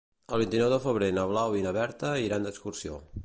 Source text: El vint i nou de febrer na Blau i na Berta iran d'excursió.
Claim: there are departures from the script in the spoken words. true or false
false